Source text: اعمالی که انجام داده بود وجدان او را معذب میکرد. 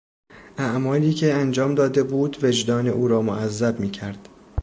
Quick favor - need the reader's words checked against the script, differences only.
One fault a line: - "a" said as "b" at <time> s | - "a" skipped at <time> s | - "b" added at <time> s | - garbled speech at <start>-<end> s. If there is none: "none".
none